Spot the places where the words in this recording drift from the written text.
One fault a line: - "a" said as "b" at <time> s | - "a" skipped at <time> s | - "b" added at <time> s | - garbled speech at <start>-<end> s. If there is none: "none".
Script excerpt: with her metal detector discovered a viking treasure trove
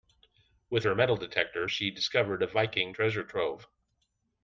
- "she" added at 1.6 s